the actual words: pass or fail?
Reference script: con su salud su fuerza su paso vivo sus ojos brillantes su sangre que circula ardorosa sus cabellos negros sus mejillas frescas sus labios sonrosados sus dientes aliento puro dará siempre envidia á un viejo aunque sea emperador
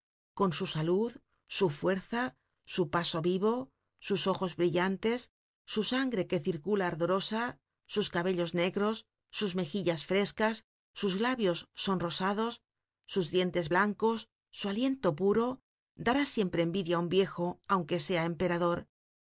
fail